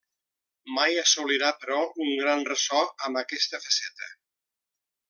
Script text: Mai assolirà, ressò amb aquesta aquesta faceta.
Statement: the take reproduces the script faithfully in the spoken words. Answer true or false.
false